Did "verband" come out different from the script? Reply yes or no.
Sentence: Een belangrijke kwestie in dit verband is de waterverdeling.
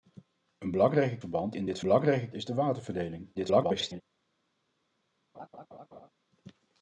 yes